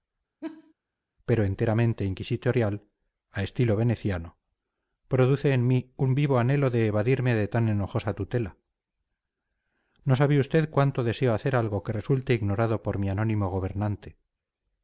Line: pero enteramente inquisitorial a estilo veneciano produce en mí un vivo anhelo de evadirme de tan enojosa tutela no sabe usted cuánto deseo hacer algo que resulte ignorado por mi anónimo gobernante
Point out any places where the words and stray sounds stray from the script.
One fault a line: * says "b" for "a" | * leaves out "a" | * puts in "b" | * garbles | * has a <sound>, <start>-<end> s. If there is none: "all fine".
* has a laugh, 0.4-0.7 s